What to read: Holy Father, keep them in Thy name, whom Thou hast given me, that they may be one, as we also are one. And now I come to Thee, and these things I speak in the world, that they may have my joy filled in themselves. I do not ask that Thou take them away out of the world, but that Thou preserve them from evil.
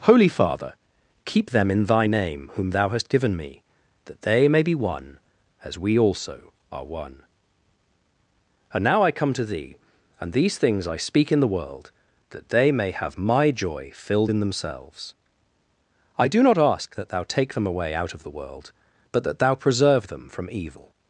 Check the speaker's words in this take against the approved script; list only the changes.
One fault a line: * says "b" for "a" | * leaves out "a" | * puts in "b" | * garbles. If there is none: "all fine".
all fine